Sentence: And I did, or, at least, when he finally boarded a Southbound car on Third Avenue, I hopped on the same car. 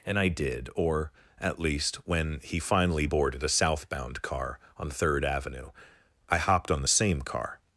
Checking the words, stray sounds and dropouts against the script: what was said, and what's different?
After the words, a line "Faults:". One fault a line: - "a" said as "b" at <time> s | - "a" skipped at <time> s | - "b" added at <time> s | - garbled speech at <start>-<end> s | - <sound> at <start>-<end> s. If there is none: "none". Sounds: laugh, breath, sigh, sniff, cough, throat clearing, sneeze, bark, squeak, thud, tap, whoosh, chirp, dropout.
And I did, or, at least, when he finally boarded a Southbound car on Third Avenue, I hopped on the same car.
Faults:
none